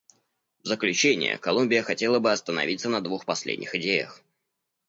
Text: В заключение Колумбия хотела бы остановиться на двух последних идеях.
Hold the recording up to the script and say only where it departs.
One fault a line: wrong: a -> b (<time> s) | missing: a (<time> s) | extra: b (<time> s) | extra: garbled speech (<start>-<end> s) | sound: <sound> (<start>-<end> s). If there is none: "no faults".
no faults